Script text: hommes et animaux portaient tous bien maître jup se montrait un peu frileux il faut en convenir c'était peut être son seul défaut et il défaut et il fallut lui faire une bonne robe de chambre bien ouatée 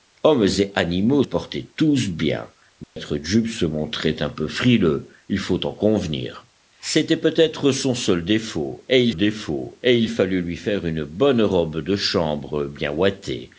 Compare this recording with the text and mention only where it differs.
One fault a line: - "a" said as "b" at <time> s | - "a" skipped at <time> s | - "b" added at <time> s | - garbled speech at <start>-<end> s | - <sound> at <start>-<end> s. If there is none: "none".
- dropout at 2.8-3.0 s